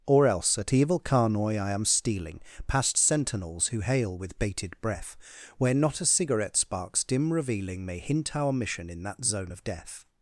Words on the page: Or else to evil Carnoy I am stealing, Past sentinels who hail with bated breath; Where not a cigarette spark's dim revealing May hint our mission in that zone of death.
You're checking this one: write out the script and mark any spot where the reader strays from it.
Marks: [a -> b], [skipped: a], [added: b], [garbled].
Or else [to -> at] evil Carnoy I am stealing, Past sentinels who hail with bated breath; Where not a cigarette spark's dim revealing May hint our mission in that zone of death.